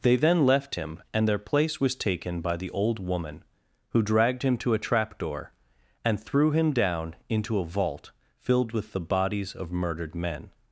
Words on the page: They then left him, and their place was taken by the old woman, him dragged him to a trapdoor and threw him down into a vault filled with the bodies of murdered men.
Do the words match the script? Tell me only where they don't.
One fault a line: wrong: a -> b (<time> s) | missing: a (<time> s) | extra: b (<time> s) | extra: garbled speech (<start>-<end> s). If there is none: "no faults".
wrong: him -> who (3.9 s)